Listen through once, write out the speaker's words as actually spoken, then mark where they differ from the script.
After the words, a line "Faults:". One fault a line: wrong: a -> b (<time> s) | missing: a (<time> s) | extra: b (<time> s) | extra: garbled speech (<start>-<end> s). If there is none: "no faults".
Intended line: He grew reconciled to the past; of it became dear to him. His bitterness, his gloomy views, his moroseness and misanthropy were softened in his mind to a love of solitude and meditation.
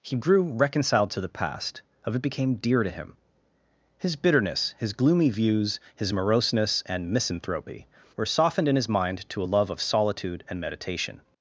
He grew reconciled to the past; of it became dear to him. His bitterness, his gloomy views, his moroseness and misanthropy were softened in his mind to a love of solitude and meditation.
Faults:
no faults